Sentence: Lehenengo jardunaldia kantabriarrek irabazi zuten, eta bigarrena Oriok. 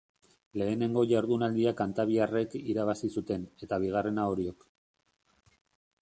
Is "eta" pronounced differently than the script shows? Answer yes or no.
no